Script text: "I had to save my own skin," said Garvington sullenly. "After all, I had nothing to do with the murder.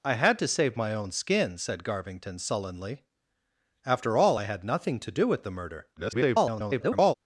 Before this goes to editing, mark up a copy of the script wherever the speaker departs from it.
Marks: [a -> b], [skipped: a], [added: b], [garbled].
"I had to save my own skin," said Garvington sullenly. "After all, I had nothing to do with the murder. [garbled]